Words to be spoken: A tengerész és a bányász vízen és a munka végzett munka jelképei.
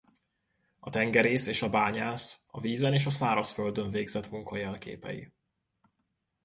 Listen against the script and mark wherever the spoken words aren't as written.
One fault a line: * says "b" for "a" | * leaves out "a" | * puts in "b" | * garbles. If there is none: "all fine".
* puts in "a"
* says "szárazföldön" for "munka"